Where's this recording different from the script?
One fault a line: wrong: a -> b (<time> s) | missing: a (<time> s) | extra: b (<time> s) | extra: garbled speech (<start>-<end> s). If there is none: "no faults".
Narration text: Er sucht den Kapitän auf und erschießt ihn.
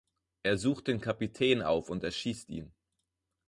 no faults